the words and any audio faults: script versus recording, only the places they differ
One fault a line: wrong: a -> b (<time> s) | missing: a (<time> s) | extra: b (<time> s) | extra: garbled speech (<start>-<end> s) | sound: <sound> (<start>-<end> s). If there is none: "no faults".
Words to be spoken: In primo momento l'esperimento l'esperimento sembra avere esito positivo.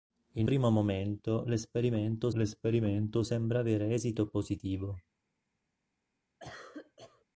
sound: cough (6.4-7.3 s)